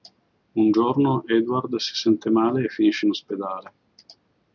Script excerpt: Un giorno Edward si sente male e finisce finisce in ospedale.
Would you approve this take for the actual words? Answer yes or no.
no